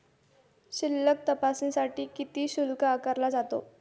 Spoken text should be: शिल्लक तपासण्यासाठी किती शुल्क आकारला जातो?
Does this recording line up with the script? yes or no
yes